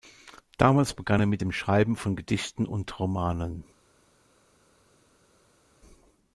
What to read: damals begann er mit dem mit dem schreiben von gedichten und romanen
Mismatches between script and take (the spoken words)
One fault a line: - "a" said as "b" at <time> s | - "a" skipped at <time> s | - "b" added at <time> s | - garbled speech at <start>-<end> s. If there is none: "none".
- "mit dem" skipped at 1.5 s